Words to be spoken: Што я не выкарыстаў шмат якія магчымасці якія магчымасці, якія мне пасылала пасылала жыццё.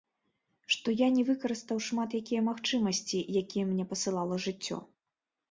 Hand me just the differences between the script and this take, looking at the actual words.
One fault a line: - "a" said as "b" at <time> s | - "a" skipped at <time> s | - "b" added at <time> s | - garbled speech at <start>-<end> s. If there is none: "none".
- "магчымасці якія" skipped at 3.7 s
- "пасылала" skipped at 4.4 s